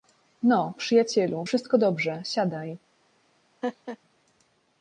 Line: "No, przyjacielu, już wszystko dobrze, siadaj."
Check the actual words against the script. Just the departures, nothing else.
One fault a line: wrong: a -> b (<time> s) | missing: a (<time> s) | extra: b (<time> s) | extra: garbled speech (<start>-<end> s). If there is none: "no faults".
missing: już (1.5 s)